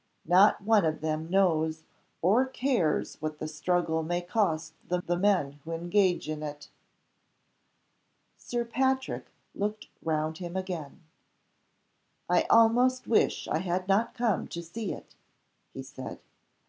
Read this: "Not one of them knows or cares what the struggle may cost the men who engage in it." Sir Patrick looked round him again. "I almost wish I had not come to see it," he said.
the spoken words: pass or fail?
fail